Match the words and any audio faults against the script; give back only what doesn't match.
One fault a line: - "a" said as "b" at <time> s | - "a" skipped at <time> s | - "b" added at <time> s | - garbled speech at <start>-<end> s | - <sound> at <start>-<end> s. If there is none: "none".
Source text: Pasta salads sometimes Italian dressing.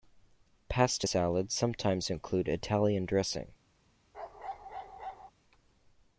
- "include" added at 2.1 s
- bark at 4.1-5.3 s